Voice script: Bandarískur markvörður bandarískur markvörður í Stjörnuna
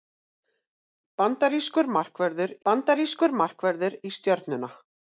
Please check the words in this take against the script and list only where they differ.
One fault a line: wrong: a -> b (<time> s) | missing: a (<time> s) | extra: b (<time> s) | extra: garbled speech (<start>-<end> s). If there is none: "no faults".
no faults